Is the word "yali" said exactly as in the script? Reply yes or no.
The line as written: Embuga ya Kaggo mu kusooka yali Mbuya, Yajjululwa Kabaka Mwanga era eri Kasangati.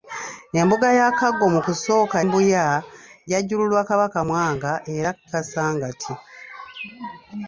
no